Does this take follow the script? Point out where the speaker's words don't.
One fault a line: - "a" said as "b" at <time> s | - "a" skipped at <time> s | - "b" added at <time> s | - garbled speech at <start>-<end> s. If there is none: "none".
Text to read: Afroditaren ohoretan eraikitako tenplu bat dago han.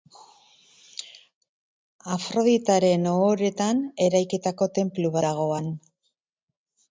- "bat" skipped at 5.2 s